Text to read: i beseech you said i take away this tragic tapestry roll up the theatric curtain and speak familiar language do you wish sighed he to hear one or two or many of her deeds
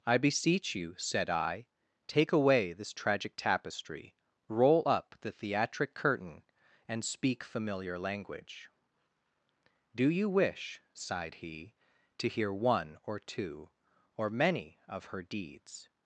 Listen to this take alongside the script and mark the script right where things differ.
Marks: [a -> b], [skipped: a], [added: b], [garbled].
i beseech you said i take away this tragic tapestry roll up the theatric curtain and speak familiar language do you wish sighed he to hear one or two or many of her deeds